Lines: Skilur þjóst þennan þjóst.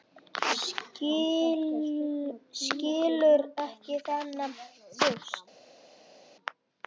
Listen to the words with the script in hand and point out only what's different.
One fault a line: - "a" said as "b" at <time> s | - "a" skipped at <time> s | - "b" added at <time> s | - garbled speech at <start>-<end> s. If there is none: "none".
- "þjóst" said as "ekki" at 3.6 s